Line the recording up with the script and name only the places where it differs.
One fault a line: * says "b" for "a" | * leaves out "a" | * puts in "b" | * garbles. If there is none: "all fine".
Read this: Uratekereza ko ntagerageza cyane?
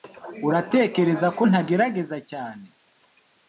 all fine